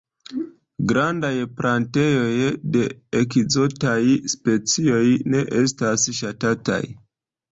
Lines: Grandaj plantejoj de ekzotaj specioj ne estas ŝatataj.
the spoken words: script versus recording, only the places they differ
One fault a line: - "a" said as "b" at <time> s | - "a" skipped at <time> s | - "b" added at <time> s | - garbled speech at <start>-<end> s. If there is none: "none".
none